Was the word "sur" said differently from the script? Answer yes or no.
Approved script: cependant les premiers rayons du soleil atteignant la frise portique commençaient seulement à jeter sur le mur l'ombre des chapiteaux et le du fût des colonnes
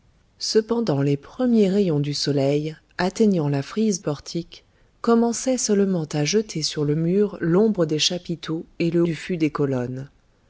no